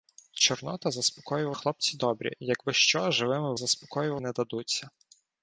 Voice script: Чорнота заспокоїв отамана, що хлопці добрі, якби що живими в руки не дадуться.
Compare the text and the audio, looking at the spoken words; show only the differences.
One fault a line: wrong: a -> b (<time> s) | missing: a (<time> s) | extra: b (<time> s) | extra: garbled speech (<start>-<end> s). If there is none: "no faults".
missing: отамана що (1.5 s)
wrong: руки -> заспокоїв (3.6 s)